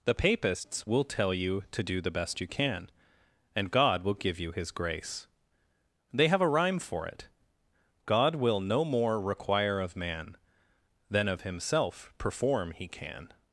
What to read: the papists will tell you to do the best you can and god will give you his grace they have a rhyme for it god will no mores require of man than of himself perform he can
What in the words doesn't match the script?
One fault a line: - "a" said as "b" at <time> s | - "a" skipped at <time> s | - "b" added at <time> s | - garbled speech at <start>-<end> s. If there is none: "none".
- "mores" said as "more" at 8.8 s